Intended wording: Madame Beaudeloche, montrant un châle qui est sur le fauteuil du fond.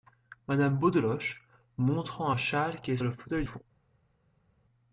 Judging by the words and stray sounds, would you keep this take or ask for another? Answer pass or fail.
fail